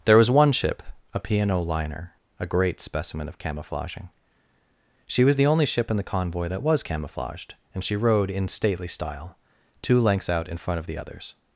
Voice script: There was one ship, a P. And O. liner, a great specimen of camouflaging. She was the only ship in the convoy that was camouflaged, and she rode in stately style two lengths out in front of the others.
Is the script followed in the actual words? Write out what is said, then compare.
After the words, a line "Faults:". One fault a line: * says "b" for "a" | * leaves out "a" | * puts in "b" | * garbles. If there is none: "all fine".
There was one ship, a P. And O. liner, a great specimen of camouflaging. She was the only ship in the convoy that was camouflaged, and she rode in stately style two lengths out in front of the others.
Faults:
all fine